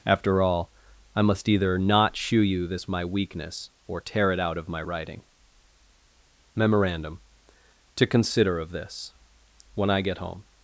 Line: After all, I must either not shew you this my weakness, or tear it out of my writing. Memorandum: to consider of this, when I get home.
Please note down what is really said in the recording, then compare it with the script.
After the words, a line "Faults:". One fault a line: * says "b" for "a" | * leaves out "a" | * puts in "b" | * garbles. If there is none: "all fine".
After all, I must either not shew you this my weakness, or tear it out of my writing. Memorandum: to consider of this, when I get home.
Faults:
all fine